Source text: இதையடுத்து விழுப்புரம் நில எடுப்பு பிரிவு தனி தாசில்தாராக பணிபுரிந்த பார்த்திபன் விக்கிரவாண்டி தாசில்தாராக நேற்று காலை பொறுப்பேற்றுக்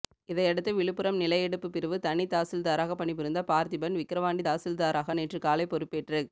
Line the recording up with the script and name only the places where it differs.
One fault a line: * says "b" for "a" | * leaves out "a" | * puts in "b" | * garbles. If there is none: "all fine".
all fine